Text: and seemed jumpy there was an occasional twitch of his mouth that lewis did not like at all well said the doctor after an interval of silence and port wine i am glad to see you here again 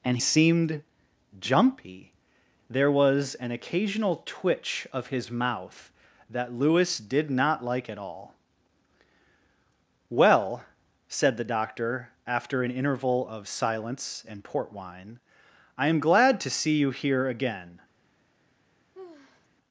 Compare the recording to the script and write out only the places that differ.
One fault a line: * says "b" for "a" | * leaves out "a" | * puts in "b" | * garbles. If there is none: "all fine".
all fine